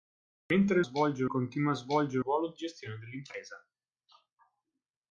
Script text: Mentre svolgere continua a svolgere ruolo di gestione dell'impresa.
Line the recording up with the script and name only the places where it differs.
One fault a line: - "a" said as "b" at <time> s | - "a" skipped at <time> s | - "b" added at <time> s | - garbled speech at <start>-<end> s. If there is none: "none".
none